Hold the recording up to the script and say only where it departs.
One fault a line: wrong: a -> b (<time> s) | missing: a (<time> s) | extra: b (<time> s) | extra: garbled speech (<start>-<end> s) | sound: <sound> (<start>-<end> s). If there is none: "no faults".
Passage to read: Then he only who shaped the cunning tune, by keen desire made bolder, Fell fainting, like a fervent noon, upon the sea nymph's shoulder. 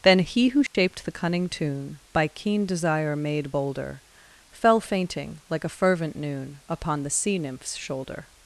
missing: only (0.5 s)
sound: dropout (0.7-0.7 s)